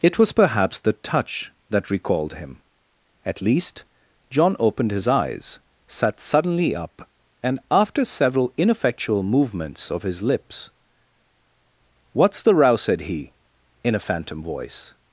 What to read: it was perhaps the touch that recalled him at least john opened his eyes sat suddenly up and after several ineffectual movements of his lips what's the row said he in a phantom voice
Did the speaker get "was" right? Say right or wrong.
right